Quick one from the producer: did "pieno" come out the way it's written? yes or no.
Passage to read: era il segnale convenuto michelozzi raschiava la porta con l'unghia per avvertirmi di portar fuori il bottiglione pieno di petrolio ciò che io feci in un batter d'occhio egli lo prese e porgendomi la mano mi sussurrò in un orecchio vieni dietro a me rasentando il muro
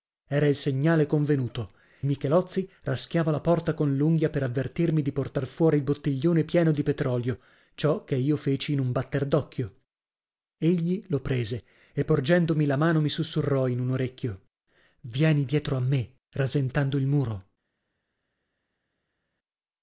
yes